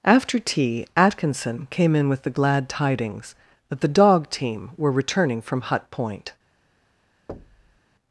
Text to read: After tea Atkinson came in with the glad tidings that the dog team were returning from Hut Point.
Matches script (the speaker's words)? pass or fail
pass